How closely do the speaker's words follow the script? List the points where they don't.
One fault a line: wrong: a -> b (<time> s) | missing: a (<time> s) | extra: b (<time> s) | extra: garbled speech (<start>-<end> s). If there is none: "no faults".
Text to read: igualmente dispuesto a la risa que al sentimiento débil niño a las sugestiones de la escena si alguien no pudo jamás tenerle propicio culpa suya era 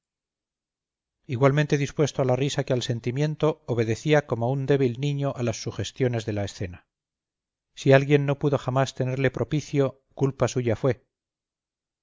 extra: obedecía como un (3.7 s)
wrong: era -> fue (10.8 s)